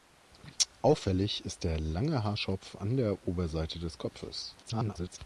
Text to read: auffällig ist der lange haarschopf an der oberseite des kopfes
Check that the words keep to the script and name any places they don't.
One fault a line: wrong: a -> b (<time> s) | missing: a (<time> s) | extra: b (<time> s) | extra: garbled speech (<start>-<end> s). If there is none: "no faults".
extra: garbled speech (4.6-5.2 s)